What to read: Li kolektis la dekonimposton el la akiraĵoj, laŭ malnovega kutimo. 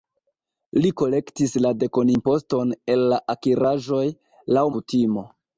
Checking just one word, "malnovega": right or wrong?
wrong